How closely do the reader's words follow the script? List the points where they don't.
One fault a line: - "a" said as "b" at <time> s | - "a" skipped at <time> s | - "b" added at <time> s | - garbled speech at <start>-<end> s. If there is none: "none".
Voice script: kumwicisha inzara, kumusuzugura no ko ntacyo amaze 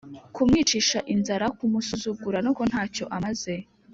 none